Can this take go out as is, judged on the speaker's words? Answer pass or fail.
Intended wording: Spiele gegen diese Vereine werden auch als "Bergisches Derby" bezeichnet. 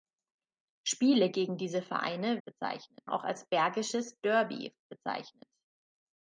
fail